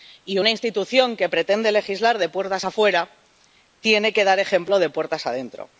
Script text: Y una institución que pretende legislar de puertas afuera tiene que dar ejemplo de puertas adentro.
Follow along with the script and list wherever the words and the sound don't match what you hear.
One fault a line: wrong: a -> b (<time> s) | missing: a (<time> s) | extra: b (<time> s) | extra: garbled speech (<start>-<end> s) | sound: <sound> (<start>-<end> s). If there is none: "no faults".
no faults